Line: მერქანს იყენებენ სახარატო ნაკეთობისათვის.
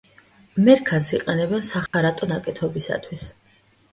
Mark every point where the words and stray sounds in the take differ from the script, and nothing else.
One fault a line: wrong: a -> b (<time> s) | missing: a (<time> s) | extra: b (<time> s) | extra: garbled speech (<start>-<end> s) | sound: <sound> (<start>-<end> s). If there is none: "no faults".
sound: dropout (1.9-1.9 s)